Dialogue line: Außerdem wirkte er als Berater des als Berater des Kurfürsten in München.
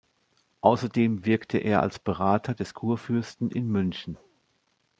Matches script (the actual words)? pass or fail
fail